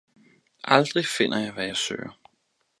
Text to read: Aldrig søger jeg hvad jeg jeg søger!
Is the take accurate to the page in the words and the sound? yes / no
no